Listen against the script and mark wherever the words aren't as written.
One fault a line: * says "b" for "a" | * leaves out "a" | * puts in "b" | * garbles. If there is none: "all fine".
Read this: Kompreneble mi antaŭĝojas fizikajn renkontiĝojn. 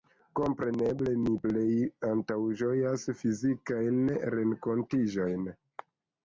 * puts in "plej"